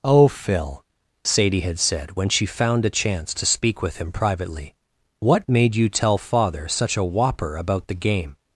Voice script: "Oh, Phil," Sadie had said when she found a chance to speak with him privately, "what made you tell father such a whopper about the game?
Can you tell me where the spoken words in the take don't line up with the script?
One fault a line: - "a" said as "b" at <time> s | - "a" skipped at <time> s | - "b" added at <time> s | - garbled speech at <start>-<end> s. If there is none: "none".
none